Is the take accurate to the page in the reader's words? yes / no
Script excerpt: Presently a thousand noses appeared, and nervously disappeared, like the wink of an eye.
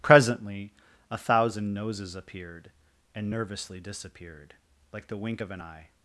yes